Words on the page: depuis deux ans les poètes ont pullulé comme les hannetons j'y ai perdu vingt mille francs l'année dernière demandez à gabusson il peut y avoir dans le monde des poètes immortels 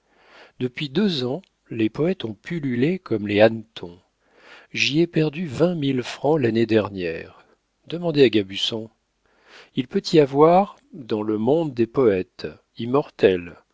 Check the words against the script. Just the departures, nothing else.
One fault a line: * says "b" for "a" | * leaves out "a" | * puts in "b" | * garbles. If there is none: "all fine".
all fine